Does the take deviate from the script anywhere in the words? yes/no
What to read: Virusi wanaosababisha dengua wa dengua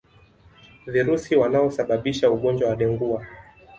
yes